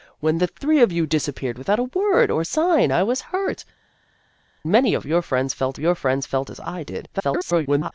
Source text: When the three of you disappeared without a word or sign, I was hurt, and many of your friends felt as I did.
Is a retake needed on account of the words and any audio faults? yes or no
yes